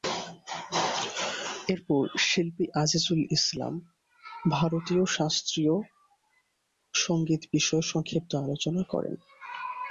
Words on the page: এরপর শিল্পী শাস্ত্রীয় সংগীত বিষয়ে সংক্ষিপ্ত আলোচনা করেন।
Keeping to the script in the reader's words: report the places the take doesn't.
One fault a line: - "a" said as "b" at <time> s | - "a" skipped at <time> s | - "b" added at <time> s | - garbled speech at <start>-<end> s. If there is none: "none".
- "আজিজুল ইসলাম ভারতীয়" added at 2.8 s